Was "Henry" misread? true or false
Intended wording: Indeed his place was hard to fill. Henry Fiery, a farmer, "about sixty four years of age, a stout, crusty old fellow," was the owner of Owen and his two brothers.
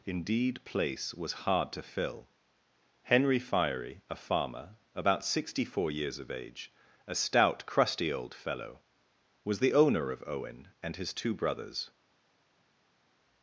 false